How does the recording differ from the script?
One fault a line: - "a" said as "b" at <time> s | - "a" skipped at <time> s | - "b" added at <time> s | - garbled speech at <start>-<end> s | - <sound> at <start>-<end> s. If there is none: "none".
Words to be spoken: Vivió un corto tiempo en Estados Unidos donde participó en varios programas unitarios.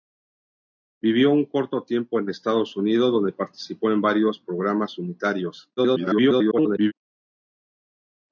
- garbled speech at 5.8-6.9 s